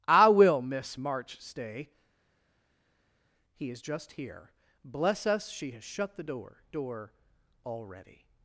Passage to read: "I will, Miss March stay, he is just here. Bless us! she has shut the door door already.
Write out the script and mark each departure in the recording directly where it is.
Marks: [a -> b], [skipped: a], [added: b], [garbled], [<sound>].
"I will, Miss March stay, he is just here. Bless us! she has shut the door door already.